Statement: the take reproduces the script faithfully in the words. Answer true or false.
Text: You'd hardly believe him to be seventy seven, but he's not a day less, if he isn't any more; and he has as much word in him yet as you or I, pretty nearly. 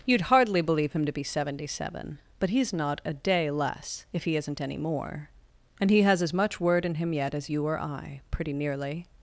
true